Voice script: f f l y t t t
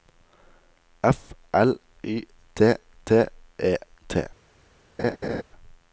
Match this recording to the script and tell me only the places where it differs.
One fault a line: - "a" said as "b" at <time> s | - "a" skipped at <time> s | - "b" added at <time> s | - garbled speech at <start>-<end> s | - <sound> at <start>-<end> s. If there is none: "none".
- "f" skipped at 1.4 s
- "e" added at 3.6 s
- laugh at 5.0-5.4 s